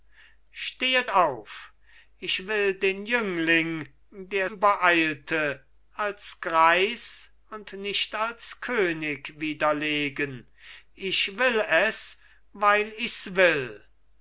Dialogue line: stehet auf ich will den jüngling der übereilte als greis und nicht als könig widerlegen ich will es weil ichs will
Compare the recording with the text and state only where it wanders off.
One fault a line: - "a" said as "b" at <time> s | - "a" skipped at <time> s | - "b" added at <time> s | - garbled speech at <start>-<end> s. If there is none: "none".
none